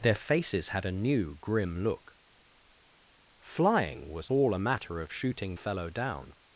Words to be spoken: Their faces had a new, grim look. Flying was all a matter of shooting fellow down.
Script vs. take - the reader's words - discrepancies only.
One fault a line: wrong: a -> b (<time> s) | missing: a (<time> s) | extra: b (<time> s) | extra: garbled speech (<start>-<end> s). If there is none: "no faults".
no faults